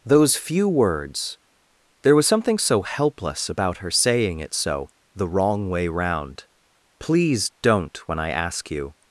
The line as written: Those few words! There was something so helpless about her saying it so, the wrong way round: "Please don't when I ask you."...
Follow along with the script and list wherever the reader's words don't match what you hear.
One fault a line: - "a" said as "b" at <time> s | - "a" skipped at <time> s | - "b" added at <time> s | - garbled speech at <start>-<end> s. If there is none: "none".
none